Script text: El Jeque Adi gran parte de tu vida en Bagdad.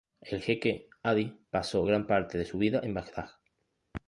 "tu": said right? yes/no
no